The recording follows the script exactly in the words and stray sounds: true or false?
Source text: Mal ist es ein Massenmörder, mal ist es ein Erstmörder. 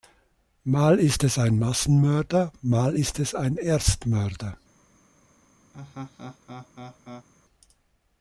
false